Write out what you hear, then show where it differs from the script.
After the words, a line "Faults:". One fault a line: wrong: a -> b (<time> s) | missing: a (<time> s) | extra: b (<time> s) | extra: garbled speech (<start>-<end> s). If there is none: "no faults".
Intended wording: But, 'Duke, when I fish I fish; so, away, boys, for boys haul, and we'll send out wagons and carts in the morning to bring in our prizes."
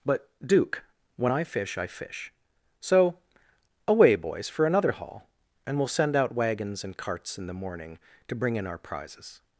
But, 'Duke, when I fish I fish; so, away, boys, for another haul, and we'll send out wagons and carts in the morning to bring in our prizes."
Faults:
wrong: boys -> another (4.7 s)